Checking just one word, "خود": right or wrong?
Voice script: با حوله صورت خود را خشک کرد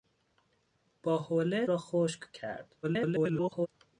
wrong